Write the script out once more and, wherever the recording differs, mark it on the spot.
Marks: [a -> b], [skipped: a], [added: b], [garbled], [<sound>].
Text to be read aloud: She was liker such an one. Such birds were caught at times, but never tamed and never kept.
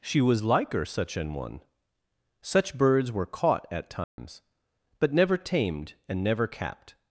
She was liker such an one. Such birds were caught at times, [dropout] but never tamed and never [kept. -> capped]